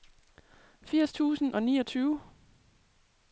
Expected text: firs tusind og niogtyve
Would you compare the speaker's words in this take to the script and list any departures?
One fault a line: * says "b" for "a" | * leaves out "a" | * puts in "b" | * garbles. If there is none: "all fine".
all fine